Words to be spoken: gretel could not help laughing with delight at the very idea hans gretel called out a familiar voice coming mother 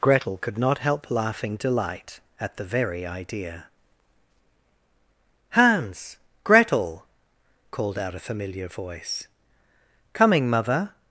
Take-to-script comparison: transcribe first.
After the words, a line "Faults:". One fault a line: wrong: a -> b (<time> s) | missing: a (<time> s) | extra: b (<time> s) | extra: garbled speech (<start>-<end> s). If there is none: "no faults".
gretel could not help laughing delight at the very idea hans gretel called out a familiar voice coming mother
Faults:
missing: with (1.6 s)